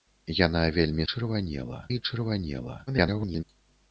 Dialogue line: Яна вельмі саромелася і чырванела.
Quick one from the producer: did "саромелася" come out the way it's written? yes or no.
no